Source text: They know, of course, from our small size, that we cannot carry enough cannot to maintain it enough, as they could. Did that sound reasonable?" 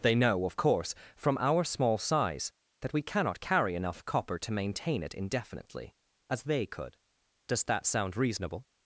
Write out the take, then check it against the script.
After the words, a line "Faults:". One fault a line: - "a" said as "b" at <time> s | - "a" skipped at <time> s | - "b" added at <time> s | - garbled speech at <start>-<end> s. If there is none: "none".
They know, of course, from our small size, that we cannot carry enough copper to maintain it indefinitely, as they could. Does that sound reasonable?"
Faults:
- "cannot" said as "copper" at 4.0 s
- "enough" said as "indefinitely" at 5.1 s
- "Did" said as "Does" at 7.5 s